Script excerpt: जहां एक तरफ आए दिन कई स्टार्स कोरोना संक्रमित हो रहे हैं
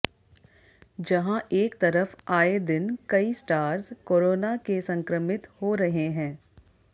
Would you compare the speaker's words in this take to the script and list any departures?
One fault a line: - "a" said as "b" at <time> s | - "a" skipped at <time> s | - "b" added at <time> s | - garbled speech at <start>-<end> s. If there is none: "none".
- "के" added at 4.7 s